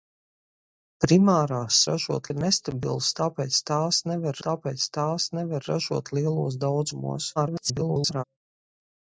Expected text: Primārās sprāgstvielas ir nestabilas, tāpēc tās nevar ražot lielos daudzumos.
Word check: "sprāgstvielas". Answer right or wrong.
wrong